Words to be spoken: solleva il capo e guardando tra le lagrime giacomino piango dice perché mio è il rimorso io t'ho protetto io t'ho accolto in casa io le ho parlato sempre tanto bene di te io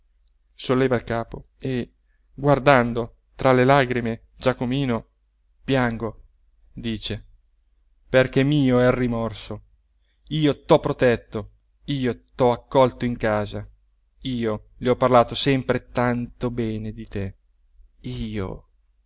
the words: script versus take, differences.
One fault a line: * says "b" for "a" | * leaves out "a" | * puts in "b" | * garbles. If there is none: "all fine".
all fine